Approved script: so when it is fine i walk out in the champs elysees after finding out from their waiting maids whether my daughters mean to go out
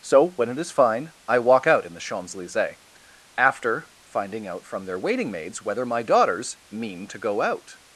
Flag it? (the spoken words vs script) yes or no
no